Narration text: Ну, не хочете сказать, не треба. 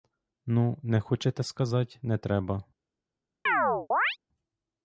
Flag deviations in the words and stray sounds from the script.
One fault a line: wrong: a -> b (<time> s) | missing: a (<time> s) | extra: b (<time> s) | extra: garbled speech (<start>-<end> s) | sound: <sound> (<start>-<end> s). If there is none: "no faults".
sound: chirp (3.5-4.2 s)